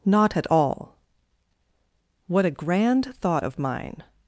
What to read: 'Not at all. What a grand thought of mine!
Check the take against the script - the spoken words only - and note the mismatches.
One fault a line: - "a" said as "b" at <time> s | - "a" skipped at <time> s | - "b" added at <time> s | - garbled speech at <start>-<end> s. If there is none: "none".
none